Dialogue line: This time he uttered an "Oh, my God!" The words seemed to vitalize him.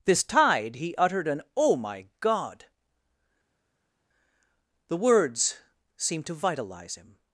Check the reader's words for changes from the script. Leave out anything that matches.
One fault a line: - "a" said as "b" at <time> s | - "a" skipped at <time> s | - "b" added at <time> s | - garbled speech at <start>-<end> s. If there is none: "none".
- "time" said as "tide" at 0.2 s